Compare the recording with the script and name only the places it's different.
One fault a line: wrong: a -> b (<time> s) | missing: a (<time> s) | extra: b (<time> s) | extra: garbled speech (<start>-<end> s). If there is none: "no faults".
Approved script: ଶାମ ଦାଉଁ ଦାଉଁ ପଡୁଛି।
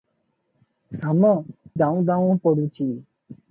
no faults